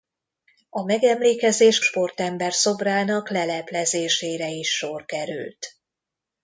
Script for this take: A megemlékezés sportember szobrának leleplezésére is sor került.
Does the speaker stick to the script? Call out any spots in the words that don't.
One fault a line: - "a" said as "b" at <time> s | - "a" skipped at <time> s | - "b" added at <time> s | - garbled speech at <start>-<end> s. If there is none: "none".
none